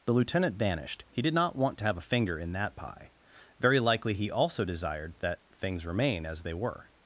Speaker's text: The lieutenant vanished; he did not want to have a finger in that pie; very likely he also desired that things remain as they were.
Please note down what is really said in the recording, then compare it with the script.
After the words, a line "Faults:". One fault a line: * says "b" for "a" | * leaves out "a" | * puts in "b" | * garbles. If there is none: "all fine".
The lieutenant vanished; he did not want to have a finger in that pie; very likely he also desired that things remain as they were.
Faults:
all fine